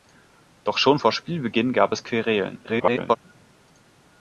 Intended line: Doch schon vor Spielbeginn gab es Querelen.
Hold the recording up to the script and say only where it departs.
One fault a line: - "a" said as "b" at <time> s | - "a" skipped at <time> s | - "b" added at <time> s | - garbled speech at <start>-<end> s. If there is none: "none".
- garbled speech at 2.6-3.2 s